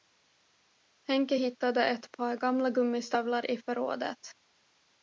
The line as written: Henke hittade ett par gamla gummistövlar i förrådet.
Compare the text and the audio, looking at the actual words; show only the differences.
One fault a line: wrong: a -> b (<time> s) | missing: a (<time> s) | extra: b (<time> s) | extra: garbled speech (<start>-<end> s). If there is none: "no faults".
no faults